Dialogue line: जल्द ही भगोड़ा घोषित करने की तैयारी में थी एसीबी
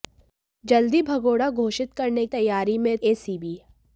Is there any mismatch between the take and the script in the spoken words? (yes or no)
yes